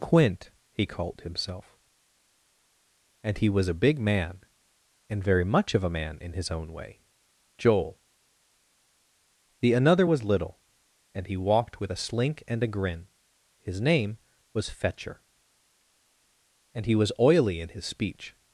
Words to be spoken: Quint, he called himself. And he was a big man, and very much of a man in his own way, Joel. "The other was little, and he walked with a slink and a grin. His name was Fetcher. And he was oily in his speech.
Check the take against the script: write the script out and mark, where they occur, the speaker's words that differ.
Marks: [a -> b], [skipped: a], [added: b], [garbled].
Quint, he called himself. And he was a big man, and very much of a man in his own way, Joel. "The [other -> another] was little, and he walked with a slink and a grin. His name was Fetcher. And he was oily in his speech.